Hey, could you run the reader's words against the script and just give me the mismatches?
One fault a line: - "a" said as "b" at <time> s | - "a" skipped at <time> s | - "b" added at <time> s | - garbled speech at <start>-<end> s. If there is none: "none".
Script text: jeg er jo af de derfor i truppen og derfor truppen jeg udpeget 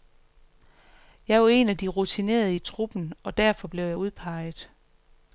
- "en" added at 1.5 s
- "derfor" said as "rutinerede" at 1.9 s
- "truppen" said as "blev" at 3.7 s